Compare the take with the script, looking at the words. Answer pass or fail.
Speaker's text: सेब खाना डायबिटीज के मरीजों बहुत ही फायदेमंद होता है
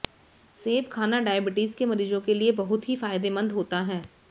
fail